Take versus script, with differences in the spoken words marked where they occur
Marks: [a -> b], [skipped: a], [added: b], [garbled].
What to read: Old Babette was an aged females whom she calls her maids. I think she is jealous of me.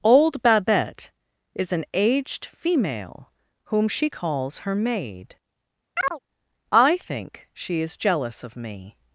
Old Babette [was -> is] an aged [females -> female] whom she calls her [maids. -> maid] I think she is jealous of me.